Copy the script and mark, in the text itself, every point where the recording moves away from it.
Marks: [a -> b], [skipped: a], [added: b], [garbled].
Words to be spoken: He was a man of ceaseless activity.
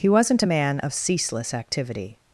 He [was -> wasn't] a man of ceaseless activity.